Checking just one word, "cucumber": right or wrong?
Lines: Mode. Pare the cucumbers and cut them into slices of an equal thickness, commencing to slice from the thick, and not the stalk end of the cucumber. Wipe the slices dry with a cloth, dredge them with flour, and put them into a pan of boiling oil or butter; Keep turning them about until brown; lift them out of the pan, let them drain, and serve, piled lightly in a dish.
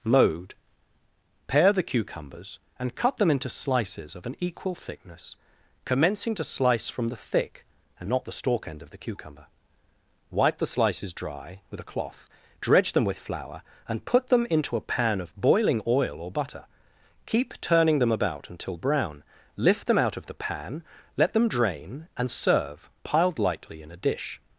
right